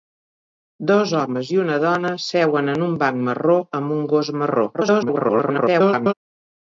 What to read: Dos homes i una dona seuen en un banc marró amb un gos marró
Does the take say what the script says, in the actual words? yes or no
no